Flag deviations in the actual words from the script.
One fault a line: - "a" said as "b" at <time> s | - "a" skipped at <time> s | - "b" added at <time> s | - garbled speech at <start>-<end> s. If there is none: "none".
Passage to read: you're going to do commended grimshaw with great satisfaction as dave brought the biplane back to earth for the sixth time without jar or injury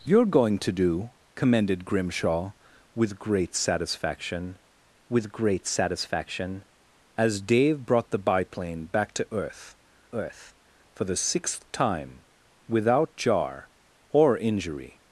- "with great satisfaction" added at 5.1 s
- "earth" added at 10.1 s